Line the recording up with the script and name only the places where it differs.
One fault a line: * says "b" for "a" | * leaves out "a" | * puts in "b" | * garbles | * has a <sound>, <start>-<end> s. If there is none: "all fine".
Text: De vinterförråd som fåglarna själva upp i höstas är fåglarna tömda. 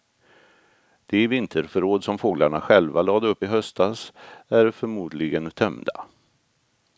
* puts in "lade"
* says "förmodligen" for "fåglarna"